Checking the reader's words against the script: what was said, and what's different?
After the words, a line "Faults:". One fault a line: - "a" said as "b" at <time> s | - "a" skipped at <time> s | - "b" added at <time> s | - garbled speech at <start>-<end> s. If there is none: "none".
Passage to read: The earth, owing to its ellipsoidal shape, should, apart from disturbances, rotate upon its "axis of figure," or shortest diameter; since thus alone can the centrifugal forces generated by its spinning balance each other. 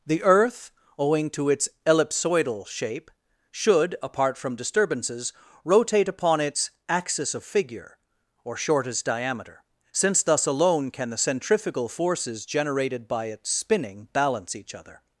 The earth, owing to its ellipsoidal shape, should, apart from disturbances, rotate upon its "axis of figure," or shortest diameter; since thus alone can the centrifugal forces generated by its spinning balance each other.
Faults:
none